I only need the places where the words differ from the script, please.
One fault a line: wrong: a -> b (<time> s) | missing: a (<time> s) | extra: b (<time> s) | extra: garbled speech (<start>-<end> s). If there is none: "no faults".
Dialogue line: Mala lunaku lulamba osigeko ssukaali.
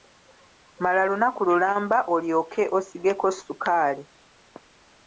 extra: olyoke (2.1 s)